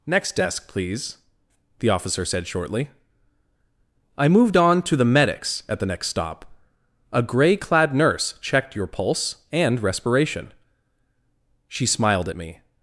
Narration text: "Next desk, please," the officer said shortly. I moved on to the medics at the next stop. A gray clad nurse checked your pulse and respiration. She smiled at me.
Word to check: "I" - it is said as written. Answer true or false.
true